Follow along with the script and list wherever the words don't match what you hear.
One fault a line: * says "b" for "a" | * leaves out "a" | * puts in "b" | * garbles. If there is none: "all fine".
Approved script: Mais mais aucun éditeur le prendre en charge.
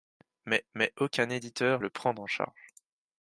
all fine